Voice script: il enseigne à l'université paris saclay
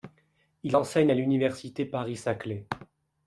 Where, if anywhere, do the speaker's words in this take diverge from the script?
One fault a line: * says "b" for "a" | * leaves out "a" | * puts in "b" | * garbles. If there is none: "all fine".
all fine